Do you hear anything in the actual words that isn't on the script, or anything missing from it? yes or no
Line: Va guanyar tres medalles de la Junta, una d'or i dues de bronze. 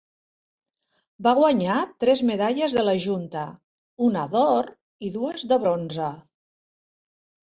no